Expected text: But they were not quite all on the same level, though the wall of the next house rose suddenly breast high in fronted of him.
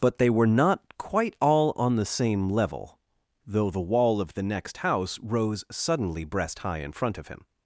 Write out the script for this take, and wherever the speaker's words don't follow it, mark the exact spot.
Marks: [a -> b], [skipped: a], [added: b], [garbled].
But they were not quite all on the same level, though the wall of the next house rose suddenly breast high in [fronted -> front] of him.